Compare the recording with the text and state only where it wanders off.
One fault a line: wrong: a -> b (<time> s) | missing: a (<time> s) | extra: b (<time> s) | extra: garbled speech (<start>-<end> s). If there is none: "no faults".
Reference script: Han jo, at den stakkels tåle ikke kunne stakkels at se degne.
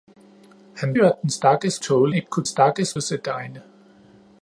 no faults